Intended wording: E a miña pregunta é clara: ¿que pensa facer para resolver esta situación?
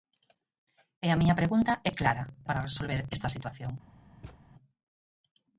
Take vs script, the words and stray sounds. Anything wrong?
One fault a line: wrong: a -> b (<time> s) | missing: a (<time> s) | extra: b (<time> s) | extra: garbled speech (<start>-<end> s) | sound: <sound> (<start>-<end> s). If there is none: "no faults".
missing: que pensa facer (2.2 s)
sound: thud (4.2-4.4 s)